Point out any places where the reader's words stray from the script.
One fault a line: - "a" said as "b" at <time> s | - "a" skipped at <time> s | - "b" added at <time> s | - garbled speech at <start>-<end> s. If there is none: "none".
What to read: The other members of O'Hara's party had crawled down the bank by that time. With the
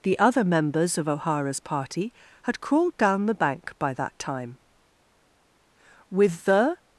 none